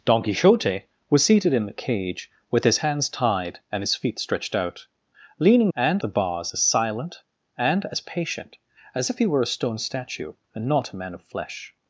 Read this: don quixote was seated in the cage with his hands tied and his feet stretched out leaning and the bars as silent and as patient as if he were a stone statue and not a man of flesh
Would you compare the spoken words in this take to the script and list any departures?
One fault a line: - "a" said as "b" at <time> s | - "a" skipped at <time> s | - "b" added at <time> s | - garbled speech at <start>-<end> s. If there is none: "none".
none